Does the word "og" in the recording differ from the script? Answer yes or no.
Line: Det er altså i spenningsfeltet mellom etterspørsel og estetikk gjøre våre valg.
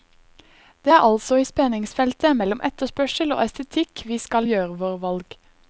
no